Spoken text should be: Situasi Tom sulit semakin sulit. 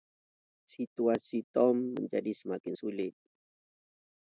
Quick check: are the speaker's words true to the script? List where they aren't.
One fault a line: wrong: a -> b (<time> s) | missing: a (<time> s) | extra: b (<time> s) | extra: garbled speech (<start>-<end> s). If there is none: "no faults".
wrong: sulit -> menjadi (1.9 s)